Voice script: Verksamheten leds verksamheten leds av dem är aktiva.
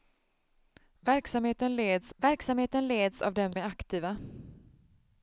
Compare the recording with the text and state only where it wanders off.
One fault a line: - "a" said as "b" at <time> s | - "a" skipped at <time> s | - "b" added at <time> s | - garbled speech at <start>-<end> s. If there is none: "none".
none